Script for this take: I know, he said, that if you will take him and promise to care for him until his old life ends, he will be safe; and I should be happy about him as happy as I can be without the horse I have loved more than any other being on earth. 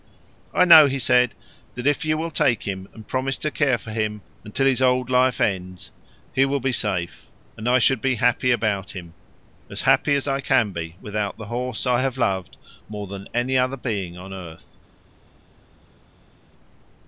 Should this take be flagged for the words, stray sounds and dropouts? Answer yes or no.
no